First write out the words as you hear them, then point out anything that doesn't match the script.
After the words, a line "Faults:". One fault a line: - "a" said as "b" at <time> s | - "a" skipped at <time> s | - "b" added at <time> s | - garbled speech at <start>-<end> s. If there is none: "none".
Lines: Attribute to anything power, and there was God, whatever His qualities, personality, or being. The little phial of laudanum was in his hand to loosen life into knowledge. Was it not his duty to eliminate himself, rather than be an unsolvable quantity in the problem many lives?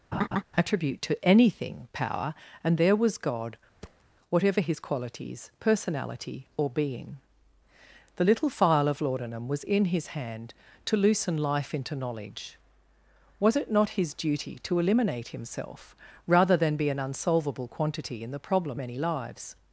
Attribute to anything power, and there was God, whatever His qualities, personality, or being. The little phial of laudanum was in his hand to loosen life into knowledge. Was it not his duty to eliminate himself, rather than be an unsolvable quantity in the problem many lives?
Faults:
none